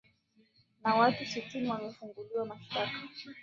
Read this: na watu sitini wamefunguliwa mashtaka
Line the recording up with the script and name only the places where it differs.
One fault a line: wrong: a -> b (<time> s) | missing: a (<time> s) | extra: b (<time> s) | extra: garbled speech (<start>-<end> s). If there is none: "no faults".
no faults